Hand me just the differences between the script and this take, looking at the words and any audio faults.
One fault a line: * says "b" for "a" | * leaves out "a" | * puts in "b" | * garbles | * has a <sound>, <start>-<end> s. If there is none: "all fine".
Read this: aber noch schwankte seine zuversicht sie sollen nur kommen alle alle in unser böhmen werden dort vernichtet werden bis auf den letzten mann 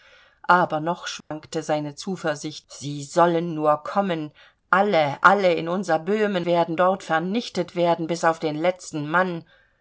* has a dropout, 1.2-1.3 s